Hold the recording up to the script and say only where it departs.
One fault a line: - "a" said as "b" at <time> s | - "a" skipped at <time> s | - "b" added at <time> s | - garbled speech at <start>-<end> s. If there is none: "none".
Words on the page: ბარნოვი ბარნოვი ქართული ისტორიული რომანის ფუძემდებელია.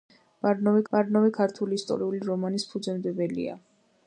none